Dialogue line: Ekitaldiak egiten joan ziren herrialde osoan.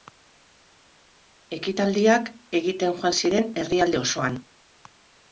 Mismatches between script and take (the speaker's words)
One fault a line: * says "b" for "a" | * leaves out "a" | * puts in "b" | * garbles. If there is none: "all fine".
all fine